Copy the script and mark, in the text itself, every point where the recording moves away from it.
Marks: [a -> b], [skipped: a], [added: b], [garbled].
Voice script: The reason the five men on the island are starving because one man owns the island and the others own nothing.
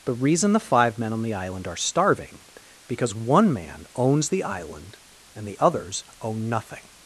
The reason the five men on the island are starving because one man owns the island and the others own nothing.